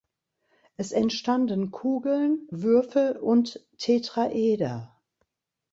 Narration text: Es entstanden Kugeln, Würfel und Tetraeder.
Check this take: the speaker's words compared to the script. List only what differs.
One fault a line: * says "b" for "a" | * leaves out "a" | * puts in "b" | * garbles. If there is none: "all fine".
all fine